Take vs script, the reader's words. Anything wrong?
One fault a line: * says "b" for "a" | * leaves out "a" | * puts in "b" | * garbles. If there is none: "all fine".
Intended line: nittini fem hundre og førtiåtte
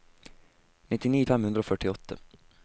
all fine